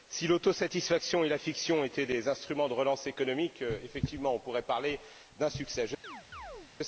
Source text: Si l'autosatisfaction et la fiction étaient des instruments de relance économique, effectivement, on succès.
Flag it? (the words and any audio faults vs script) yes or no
yes